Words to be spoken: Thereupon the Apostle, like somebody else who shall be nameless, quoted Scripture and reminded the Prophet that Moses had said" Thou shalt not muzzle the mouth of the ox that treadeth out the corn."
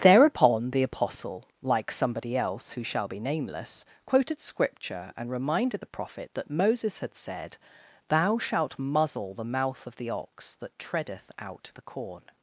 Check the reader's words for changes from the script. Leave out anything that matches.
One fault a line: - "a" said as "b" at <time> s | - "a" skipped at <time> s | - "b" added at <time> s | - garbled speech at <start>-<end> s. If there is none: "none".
- "not" skipped at 8.8 s